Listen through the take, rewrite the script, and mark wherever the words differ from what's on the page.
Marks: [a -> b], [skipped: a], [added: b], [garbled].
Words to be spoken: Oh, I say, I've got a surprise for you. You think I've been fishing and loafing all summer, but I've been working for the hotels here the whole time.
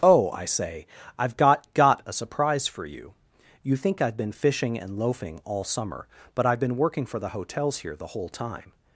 Oh, I say, I've got [added: got] a surprise for you. You think I've been fishing and loafing all summer, but I've been working for the hotels here the whole time.